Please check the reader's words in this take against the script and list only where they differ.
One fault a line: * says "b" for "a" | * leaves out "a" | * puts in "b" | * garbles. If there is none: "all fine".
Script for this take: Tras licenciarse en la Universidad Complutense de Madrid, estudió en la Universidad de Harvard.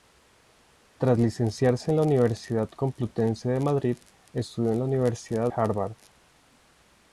* leaves out "de"